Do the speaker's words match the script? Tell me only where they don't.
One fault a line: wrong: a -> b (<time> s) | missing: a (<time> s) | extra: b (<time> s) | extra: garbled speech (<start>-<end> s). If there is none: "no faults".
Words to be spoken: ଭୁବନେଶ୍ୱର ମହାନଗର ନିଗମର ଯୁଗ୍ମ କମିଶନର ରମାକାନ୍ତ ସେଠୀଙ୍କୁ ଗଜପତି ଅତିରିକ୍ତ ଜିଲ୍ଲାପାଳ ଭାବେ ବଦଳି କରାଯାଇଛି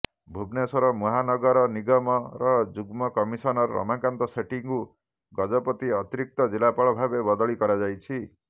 no faults